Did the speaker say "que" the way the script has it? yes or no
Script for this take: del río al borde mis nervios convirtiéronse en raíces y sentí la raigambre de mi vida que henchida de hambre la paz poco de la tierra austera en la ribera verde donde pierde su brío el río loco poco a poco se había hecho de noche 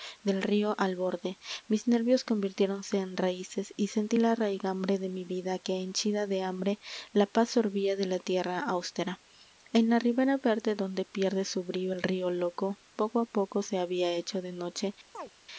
yes